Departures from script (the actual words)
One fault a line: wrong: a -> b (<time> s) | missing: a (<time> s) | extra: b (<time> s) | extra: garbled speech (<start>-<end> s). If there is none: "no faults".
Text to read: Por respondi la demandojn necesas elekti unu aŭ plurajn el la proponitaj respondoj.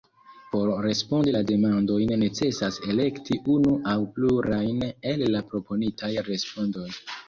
no faults